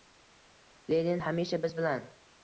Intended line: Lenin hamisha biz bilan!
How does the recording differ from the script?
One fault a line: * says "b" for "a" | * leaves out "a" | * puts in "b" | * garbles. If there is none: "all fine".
all fine